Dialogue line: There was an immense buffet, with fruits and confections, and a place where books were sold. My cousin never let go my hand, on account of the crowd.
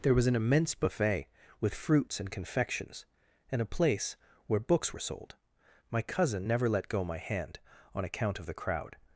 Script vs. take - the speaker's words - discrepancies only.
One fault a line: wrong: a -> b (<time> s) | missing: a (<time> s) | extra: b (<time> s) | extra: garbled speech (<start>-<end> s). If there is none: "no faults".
no faults